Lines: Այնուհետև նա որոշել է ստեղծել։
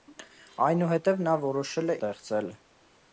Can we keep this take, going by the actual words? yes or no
yes